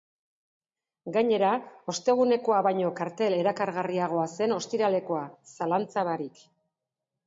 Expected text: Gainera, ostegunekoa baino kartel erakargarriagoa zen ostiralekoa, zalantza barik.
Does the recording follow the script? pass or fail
pass